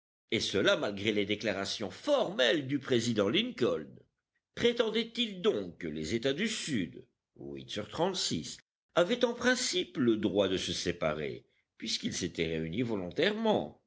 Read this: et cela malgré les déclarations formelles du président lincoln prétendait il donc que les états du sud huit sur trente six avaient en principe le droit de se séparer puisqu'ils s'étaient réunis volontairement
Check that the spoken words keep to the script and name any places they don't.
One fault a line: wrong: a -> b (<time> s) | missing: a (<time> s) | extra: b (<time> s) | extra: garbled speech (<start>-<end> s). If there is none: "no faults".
no faults